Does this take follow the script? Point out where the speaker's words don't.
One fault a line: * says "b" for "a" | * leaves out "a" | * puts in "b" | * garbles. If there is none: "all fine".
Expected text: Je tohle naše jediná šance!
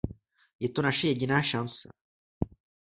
* says "to" for "tohle"